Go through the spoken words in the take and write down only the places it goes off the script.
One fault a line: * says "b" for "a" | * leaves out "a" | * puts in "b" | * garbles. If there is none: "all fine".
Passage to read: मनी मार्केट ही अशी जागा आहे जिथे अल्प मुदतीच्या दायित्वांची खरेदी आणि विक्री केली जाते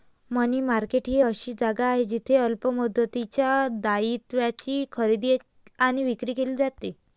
all fine